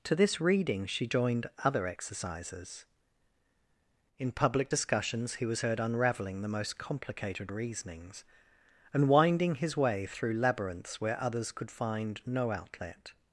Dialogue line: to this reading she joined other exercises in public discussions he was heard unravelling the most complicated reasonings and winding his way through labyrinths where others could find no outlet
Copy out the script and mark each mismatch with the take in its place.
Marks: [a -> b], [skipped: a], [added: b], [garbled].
to this reading she joined other exercises in public discussions he was heard unravelling the most complicated reasonings and winding his way through labyrinths where others could find no outlet